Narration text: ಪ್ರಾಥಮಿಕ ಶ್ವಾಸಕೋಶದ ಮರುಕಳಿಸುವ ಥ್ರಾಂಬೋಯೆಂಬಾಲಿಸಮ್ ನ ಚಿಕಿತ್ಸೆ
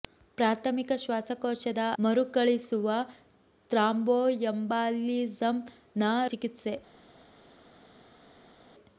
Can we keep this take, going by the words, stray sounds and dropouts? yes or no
yes